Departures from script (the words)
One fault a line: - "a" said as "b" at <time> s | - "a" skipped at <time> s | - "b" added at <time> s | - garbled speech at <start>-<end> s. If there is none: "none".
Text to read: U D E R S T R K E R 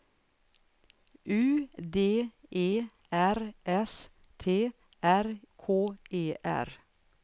none